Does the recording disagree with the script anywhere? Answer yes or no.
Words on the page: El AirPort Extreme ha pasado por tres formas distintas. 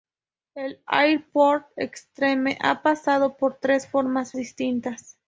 no